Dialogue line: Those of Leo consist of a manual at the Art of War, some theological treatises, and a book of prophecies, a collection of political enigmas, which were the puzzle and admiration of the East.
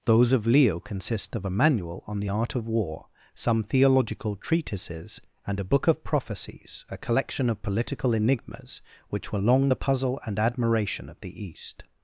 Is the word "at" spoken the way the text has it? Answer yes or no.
no